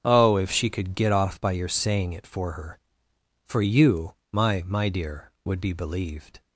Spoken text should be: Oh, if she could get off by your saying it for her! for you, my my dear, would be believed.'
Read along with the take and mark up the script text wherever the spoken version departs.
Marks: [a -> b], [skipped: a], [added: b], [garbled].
Oh, if she could get off by your saying it for her! for you, my my dear, would be believed.'